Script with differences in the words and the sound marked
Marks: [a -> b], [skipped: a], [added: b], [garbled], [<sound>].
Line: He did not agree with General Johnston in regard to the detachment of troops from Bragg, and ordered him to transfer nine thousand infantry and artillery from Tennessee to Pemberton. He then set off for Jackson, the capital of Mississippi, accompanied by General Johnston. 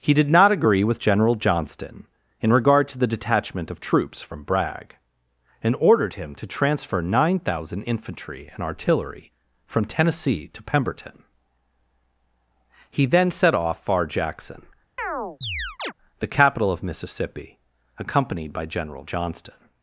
He did not agree with General Johnston in regard to the detachment of troops from Bragg, and ordered him to transfer nine thousand infantry and artillery from Tennessee to Pemberton. He then set off [for -> far] Jackson, [chirp] the capital of Mississippi, accompanied by General Johnston.